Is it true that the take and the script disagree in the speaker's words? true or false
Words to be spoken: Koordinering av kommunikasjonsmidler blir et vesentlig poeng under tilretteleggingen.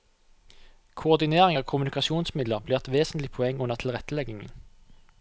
false